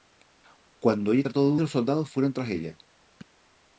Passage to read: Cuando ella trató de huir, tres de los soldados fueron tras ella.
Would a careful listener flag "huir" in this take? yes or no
yes